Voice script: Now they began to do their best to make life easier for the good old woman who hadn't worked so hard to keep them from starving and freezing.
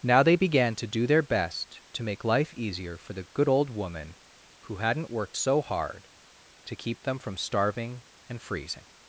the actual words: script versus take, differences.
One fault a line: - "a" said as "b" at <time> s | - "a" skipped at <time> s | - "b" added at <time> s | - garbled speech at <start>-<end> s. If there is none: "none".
none